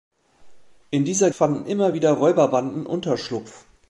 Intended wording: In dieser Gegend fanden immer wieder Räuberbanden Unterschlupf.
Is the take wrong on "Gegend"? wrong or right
wrong